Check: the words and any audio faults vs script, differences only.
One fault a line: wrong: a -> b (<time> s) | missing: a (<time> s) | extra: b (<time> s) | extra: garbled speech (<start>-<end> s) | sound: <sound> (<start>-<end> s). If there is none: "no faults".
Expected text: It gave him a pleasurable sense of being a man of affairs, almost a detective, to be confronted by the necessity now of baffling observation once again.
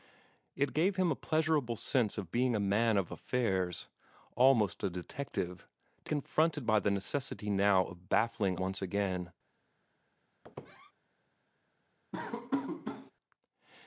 missing: be (6.1 s)
missing: observation (8.6 s)
sound: squeak (10.4-10.9 s)
sound: laugh (12.1-13.1 s)